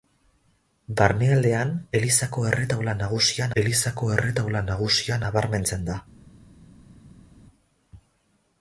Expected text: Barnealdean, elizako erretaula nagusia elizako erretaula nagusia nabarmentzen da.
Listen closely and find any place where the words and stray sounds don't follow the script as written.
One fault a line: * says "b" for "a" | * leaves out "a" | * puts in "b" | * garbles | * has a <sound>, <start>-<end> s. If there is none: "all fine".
all fine